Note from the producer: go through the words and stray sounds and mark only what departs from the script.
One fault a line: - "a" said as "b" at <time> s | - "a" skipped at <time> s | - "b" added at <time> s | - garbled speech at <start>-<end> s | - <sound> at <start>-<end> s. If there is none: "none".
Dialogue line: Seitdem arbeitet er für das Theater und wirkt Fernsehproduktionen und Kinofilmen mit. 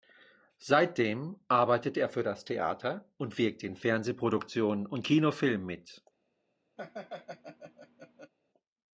- "in" added at 3.6 s
- laugh at 6.8-8.3 s